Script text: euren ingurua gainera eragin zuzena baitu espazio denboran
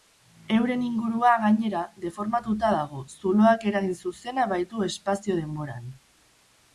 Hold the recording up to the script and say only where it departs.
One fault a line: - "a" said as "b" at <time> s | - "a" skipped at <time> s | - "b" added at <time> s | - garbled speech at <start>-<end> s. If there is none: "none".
- "deformatuta dago zuloak" added at 2.0 s